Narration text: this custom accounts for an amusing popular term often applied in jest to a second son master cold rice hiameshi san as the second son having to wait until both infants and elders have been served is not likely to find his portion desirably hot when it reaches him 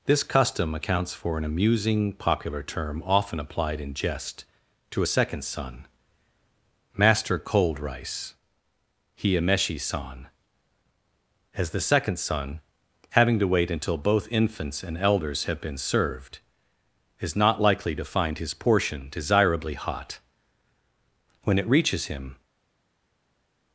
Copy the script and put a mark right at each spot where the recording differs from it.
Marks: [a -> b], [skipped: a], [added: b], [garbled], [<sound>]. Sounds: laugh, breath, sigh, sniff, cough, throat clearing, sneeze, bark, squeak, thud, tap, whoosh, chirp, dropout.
this custom accounts for an amusing popular term often applied in jest to a second son master cold rice hiameshi san as the second son having to wait until both infants and elders have been served is not likely to find his portion desirably hot when it reaches him